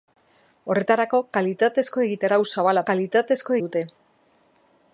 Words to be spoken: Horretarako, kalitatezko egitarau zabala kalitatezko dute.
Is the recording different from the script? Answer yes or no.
no